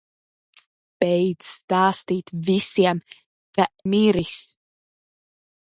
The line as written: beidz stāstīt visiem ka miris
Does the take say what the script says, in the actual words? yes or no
yes